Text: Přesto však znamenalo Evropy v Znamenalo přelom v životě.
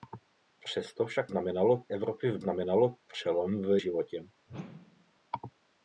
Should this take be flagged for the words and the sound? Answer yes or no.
yes